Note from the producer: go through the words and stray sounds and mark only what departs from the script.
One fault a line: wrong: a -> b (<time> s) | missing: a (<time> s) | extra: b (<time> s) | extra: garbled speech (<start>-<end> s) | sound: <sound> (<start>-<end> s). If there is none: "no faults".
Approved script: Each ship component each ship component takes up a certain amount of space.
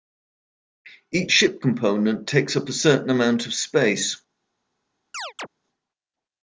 missing: each ship component (2.3 s)
sound: chirp (5.1-5.5 s)